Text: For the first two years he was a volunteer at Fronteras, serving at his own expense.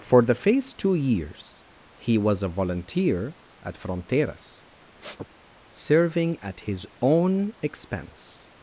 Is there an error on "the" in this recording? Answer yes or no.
no